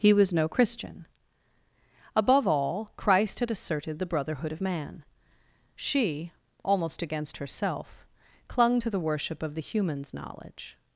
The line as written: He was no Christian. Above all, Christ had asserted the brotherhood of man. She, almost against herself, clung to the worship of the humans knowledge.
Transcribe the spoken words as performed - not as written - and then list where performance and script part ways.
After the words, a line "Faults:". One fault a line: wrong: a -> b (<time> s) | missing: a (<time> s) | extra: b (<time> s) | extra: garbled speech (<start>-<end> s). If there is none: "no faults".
He was no Christian. Above all, Christ had asserted the brotherhood of man. She, almost against herself, clung to the worship of the humans knowledge.
Faults:
no faults